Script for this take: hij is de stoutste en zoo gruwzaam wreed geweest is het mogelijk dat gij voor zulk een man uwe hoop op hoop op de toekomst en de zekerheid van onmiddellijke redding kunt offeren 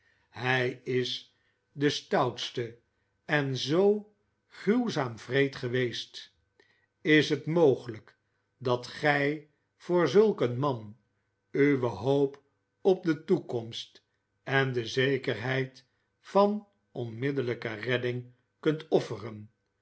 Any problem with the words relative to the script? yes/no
yes